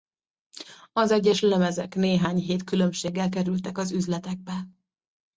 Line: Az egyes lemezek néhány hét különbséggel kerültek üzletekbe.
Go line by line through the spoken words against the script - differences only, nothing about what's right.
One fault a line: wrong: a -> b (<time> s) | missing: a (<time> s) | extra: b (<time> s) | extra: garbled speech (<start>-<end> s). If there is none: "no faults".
extra: az (3.8 s)